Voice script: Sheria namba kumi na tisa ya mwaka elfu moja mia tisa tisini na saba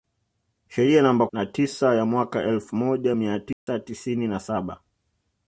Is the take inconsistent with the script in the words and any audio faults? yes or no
yes